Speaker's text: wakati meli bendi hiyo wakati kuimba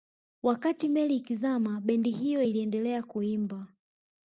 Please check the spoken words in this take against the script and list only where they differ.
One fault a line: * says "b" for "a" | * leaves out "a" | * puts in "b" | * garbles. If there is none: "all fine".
* puts in "ikizama"
* says "iliendelea" for "wakati"